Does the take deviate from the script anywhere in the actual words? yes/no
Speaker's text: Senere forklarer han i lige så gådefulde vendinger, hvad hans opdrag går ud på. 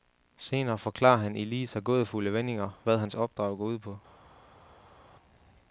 no